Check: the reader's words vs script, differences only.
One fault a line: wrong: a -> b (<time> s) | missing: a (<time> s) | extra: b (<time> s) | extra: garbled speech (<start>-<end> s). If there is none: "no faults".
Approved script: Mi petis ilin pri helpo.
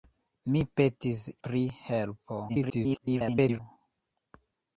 missing: ilin (1.2 s)
extra: garbled speech (2.5-3.6 s)